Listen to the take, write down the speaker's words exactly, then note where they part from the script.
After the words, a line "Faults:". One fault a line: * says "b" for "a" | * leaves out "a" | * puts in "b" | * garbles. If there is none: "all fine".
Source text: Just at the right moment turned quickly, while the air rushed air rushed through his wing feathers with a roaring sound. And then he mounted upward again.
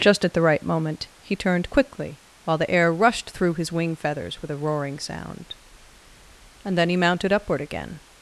Just at the right moment he turned quickly, while the air rushed through his wing feathers with a roaring sound. And then he mounted upward again.
Faults:
* puts in "he"
* leaves out "air rushed"